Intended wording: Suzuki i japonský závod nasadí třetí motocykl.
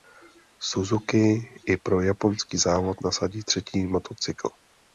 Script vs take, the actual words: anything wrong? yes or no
yes